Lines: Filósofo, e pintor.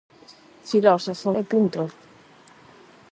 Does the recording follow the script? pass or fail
pass